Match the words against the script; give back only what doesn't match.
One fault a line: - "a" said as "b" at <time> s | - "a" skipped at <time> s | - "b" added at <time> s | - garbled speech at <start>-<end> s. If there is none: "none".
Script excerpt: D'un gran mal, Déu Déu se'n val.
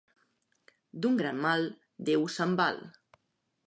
- "Déu" skipped at 2.3 s